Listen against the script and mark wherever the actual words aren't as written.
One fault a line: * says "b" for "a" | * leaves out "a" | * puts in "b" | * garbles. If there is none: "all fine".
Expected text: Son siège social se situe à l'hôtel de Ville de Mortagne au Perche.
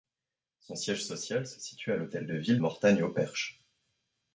* leaves out "de"